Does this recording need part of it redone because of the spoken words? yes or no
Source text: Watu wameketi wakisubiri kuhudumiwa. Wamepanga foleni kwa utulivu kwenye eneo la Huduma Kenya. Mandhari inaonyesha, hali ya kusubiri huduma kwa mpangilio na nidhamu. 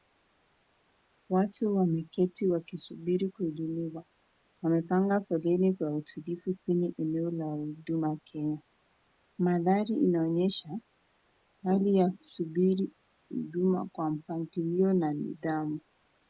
no